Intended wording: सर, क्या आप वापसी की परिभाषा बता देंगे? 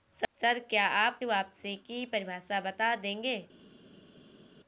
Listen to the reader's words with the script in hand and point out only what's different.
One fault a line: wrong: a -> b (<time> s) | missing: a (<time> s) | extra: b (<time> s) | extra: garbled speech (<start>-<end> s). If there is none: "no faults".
no faults